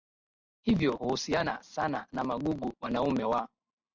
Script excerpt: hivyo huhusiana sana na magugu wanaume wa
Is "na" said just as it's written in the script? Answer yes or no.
yes